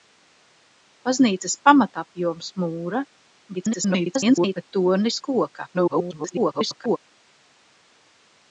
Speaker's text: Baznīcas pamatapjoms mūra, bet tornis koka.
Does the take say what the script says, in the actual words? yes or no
no